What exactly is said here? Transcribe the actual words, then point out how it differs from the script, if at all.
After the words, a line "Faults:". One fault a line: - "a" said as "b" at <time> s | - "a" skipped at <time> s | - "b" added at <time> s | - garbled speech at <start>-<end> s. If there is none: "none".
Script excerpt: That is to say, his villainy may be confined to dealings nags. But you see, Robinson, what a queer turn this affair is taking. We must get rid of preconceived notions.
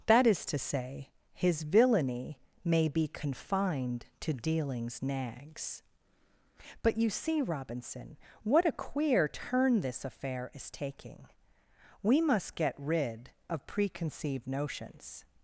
That is to say, his villainy may be confined to dealings nags. But you see, Robinson, what a queer turn this affair is taking. We must get rid of preconceived notions.
Faults:
none